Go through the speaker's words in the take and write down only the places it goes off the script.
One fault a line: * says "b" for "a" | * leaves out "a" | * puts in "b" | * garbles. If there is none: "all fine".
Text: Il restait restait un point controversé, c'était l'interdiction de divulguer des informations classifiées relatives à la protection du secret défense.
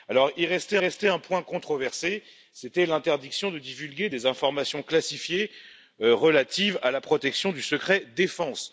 all fine